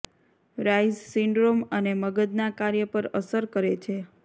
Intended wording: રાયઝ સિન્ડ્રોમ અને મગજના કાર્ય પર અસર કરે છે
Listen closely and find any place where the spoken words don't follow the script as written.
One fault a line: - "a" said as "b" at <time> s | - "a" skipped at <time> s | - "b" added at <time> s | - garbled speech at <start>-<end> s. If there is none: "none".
none